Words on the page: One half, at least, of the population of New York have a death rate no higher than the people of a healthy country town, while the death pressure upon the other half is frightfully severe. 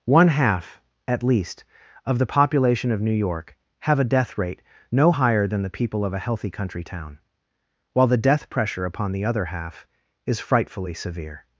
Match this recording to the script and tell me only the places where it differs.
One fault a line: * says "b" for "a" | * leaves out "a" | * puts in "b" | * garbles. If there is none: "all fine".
all fine